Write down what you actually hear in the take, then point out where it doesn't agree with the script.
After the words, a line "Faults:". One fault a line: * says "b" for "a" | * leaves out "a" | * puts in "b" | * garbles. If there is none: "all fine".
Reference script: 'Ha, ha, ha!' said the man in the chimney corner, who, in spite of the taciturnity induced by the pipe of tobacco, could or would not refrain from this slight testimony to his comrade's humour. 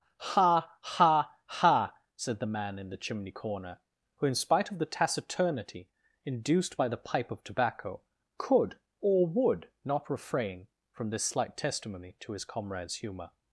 'Ha, ha, ha!' said the man in the chimney corner, who, in spite of the taciturnity induced by the pipe of tobacco, could or would not refrain from this slight testimony to his comrade's humour.
Faults:
all fine